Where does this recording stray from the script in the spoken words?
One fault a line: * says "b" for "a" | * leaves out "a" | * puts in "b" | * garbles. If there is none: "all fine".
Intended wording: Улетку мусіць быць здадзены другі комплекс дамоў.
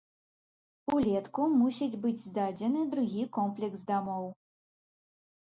all fine